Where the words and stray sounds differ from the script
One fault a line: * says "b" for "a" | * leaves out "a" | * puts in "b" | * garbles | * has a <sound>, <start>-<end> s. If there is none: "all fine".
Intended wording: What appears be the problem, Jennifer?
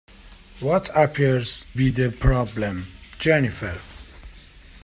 all fine